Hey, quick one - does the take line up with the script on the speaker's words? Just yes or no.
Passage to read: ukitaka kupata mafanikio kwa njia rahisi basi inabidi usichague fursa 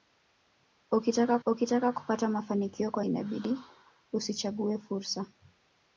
no